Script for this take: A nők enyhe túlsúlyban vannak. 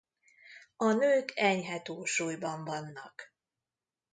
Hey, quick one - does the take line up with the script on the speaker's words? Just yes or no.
yes